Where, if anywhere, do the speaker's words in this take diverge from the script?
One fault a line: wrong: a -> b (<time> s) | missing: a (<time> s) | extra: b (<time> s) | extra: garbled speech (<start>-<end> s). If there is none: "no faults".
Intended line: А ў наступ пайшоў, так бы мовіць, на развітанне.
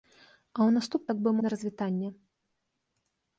missing: пайшоў (1.0 s)
missing: мовіць (1.3 s)